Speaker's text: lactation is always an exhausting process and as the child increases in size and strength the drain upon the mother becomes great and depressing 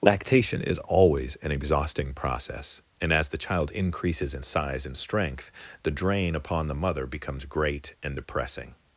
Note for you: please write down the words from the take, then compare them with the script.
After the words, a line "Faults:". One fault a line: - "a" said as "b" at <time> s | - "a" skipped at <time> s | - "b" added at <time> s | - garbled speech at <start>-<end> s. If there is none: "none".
lactation is always an exhausting process and as the child increases in size and strength the drain upon the mother becomes great and depressing
Faults:
none